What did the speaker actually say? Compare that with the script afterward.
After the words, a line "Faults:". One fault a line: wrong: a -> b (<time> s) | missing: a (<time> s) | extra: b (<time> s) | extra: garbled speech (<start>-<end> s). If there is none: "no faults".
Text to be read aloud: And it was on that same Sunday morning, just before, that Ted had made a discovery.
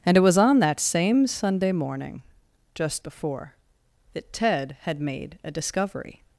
And it was on that same Sunday morning, just before, that Ted had made a discovery.
Faults:
no faults